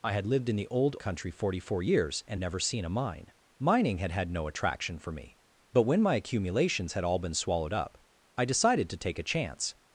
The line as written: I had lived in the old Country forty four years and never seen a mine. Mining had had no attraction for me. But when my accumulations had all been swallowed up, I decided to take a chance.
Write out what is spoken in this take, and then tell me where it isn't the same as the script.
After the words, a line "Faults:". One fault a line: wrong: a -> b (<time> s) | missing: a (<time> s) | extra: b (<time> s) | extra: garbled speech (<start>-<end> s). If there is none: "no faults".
I had lived in the old Country forty four years and never seen a mine. Mining had had no attraction for me. But when my accumulations had all been swallowed up, I decided to take a chance.
Faults:
no faults